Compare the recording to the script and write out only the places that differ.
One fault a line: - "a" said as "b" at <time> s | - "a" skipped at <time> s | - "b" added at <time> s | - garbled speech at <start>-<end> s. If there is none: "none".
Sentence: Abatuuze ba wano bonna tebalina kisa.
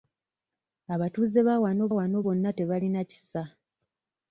- "wano" added at 2.0 s